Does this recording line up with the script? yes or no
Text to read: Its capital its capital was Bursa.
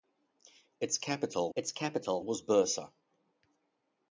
yes